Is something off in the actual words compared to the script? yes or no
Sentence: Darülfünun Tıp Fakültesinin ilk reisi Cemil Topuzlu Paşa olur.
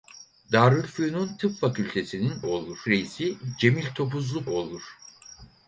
yes